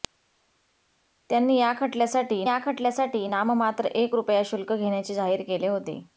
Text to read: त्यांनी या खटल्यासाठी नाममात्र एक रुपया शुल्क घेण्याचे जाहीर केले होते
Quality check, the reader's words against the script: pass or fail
fail